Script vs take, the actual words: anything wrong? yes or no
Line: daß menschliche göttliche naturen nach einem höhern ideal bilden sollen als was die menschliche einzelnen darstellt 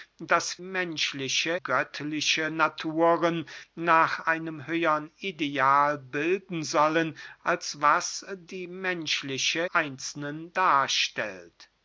no